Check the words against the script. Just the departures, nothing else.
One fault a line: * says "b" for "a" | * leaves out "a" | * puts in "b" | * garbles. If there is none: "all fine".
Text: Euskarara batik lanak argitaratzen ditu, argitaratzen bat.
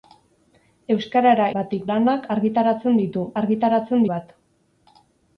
all fine